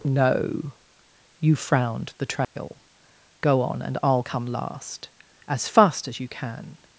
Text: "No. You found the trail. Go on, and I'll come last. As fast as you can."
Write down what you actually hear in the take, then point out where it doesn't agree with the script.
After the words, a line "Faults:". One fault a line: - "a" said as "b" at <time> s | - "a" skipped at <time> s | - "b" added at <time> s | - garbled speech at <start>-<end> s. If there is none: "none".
"No. You frowned the trail. Go on, and I'll come last. As fast as you can."
Faults:
- "found" said as "frowned" at 1.6 s